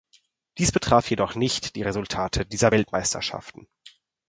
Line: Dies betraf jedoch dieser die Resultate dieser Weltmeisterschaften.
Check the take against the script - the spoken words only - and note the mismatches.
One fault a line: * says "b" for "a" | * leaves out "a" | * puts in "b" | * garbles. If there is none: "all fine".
* says "nicht" for "dieser"